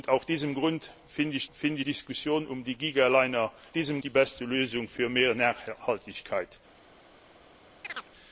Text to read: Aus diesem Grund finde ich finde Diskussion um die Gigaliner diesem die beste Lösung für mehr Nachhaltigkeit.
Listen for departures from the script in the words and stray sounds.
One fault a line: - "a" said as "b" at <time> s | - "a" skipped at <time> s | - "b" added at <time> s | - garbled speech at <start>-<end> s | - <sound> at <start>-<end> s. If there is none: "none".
- chirp at 7.8-8.1 s